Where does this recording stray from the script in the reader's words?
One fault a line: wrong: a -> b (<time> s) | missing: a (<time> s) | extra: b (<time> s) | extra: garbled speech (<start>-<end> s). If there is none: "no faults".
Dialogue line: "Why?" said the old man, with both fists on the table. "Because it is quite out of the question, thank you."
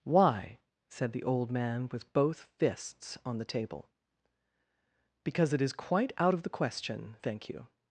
no faults